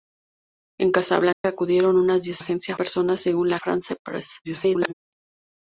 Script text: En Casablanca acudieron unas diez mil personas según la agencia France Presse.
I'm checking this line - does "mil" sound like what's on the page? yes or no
no